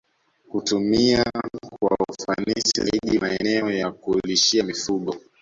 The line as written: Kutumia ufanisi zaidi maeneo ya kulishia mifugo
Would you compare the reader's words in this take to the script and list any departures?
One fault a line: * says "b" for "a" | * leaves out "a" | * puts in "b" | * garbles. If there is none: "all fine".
* puts in "kwa"